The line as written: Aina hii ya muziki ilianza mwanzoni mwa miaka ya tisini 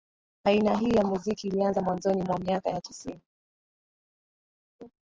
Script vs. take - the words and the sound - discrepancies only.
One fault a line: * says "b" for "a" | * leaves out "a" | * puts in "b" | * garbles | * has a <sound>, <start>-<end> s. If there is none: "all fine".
all fine